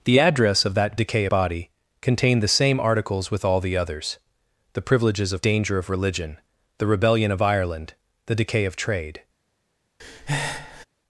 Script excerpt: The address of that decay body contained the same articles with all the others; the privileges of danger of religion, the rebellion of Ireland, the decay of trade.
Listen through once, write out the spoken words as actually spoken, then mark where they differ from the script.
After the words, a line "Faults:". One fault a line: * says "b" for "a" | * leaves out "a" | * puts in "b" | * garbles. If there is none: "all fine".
The address of that decay body contained the same articles with all the others; the privileges of danger of religion, the rebellion of Ireland, the decay of trade.
Faults:
all fine